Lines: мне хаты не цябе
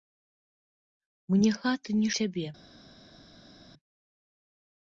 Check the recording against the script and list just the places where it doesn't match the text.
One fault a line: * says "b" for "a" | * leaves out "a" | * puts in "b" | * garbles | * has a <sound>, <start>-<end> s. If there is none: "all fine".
all fine